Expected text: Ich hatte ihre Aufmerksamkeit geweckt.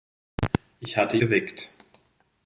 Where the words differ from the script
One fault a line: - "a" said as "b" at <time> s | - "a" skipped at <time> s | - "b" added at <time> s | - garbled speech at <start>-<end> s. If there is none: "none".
- "ihre Aufmerksamkeit" skipped at 1.2 s